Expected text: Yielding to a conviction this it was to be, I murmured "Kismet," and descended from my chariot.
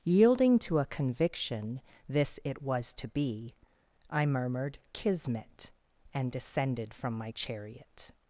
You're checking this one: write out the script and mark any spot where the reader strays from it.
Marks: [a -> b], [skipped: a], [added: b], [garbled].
Yielding to a conviction this it was to be, I murmured "Kismet," and descended from my chariot.